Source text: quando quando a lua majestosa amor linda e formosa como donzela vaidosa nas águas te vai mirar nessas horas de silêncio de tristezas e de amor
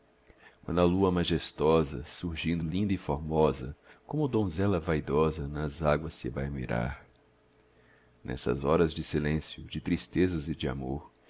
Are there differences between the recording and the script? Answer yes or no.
yes